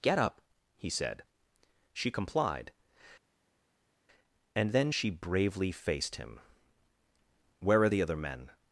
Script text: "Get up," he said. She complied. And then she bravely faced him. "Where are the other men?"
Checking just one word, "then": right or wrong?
right